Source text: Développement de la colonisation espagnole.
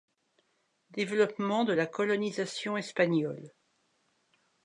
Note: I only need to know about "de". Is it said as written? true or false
true